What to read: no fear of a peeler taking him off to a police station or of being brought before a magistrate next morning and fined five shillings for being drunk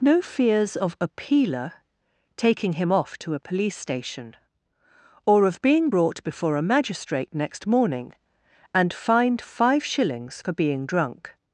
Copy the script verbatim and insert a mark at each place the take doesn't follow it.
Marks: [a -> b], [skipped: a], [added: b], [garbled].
no [fear -> fears] of a peeler taking him off to a police station or of being brought before a magistrate next morning and fined five shillings for being drunk